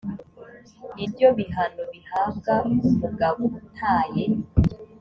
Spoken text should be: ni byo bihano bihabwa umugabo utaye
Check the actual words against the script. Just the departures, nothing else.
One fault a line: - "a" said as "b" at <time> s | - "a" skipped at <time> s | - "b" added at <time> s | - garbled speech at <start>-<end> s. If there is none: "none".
none